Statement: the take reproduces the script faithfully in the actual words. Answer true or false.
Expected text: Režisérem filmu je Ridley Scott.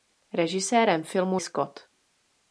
false